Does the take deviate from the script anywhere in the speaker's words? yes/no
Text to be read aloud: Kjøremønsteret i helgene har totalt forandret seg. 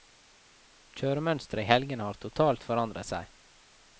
no